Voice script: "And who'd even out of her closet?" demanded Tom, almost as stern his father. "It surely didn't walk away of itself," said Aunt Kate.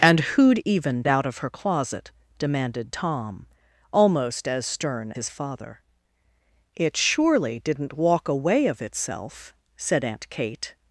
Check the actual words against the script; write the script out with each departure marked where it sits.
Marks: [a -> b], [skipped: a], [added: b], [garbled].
"And who'd even out of her closet?" demanded Tom, almost as stern his father. "It surely didn't walk away of itself," said Aunt Kate.